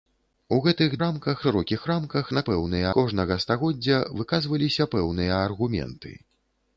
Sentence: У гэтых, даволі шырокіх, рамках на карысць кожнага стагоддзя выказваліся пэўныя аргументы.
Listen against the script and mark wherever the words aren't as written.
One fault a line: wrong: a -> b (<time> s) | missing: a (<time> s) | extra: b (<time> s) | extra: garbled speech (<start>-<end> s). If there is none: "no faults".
wrong: даволі -> рамках (1.0 s)
wrong: карысць -> пэўныя (2.5 s)